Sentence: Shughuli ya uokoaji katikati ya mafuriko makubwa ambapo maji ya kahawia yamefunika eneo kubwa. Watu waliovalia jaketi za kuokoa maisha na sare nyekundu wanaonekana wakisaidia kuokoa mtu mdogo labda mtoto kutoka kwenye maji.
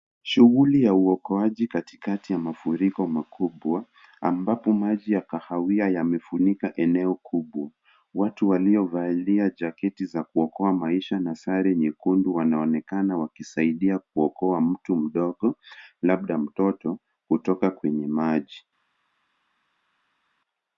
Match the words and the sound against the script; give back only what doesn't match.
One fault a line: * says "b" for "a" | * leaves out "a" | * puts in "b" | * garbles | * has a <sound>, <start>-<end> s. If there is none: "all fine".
all fine